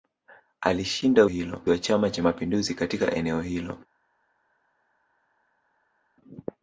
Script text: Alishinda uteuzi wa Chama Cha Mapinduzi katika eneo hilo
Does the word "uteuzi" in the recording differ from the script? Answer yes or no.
yes